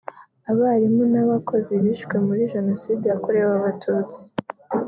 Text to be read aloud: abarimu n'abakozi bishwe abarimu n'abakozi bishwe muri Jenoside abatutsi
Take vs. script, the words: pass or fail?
fail